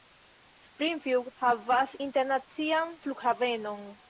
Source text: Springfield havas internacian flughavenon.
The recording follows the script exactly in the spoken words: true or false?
true